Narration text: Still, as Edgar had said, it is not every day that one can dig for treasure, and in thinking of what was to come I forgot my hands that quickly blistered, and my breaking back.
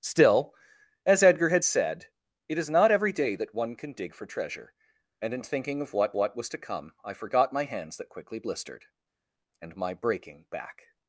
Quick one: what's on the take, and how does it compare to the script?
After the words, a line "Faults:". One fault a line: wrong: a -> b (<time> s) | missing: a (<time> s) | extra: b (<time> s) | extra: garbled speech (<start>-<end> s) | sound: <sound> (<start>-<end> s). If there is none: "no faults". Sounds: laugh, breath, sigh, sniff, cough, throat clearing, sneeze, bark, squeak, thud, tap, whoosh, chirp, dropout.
Still, as Edgar had said, it is not every day that one can dig for treasure, and in thinking of what what was to come I forgot my hands that quickly blistered, and my breaking back.
Faults:
extra: what (6.1 s)